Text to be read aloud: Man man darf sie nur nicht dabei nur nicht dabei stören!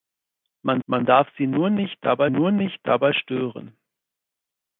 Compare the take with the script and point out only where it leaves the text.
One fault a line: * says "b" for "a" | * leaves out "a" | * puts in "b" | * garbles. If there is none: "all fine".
all fine